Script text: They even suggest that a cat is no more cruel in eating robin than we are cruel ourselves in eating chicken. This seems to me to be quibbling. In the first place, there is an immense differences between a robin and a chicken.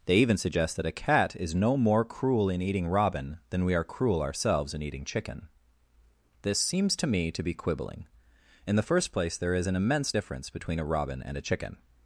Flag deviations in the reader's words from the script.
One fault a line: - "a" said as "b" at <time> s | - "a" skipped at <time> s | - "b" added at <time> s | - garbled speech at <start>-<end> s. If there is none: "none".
- "differences" said as "difference" at 10.1 s